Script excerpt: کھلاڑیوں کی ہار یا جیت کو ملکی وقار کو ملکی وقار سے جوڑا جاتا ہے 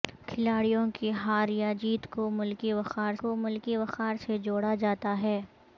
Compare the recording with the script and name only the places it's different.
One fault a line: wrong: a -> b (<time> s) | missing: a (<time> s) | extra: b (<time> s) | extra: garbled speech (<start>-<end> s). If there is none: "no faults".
no faults